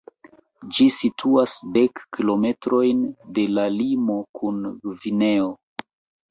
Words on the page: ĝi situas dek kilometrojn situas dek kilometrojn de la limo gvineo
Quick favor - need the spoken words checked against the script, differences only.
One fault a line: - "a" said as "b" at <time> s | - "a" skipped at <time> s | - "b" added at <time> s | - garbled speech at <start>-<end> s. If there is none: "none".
- "situas dek kilometrojn" skipped at 3.0 s
- "kun" added at 4.4 s